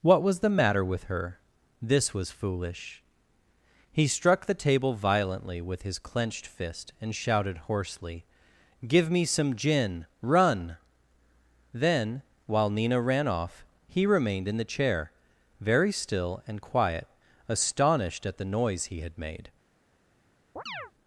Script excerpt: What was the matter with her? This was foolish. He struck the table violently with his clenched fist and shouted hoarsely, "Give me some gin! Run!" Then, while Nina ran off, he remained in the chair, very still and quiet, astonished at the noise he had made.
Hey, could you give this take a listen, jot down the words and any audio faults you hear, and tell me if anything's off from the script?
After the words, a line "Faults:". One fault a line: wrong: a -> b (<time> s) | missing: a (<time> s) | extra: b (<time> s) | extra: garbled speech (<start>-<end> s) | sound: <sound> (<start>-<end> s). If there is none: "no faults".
What was the matter with her? This was foolish. He struck the table violently with his clenched fist and shouted hoarsely, "Give me some gin! Run!" Then, while Nina ran off, he remained in the chair, very still and quiet, astonished at the noise he had made.
Faults:
sound: chirp (20.6-20.9 s)